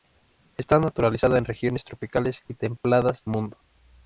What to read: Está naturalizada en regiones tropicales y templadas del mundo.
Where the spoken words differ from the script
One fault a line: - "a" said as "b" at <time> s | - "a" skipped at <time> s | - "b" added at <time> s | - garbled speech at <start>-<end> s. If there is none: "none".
- "del" skipped at 3.2 s